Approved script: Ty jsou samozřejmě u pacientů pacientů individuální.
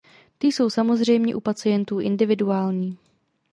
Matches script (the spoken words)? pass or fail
fail